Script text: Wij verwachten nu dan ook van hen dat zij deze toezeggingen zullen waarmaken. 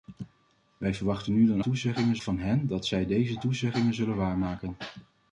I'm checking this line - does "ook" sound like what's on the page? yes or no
no